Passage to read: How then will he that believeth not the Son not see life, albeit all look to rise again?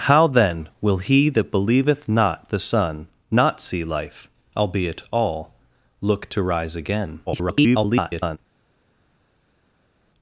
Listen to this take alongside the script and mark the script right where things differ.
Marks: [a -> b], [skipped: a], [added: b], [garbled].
How then will he that believeth not the Son not see life, albeit all look to rise again? [garbled]